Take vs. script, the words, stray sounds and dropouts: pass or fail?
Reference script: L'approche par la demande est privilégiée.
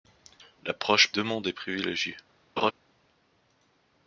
fail